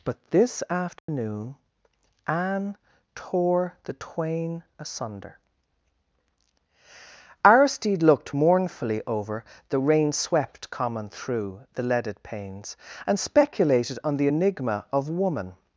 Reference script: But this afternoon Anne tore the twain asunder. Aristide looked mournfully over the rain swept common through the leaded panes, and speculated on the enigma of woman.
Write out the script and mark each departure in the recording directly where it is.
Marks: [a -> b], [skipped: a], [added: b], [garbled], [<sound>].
But this afternoon [dropout] Anne tore the twain asunder. Aristide looked mournfully over the rain swept common through the leaded panes, and speculated on the enigma of woman.